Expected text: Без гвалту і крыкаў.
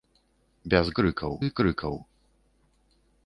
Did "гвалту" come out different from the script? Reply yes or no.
yes